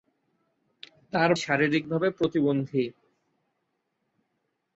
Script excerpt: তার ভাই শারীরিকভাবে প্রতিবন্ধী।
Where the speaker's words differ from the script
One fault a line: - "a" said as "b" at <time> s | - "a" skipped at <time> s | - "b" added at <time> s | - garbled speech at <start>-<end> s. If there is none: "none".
- "ভাই" skipped at 1.3 s